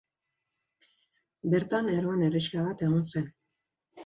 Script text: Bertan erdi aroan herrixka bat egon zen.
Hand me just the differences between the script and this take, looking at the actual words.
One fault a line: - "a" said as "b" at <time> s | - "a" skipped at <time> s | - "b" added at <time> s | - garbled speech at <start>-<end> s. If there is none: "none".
- "erdi" skipped at 1.9 s